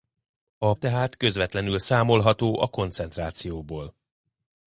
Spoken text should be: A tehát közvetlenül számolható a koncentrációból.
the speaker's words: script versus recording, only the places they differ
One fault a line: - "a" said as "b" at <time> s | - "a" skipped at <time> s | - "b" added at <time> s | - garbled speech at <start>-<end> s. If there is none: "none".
none